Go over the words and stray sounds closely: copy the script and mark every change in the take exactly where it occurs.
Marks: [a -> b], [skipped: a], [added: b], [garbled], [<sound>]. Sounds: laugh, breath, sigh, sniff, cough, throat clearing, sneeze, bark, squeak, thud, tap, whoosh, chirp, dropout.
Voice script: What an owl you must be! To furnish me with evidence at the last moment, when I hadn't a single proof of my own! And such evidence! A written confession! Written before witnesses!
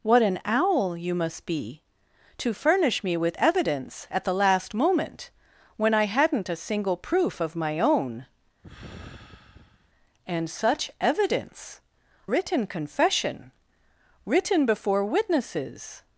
What an owl you must be! To furnish me with evidence at the last moment, when I hadn't a single proof of my own! [sigh] And such evidence! [skipped: A] written confession! Written before witnesses!